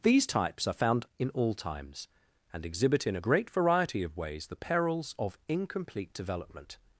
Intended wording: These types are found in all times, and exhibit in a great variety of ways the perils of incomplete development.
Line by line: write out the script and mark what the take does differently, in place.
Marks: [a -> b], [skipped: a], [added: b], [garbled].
These types are found in all times, and exhibit in a great variety of ways the perils of incomplete development.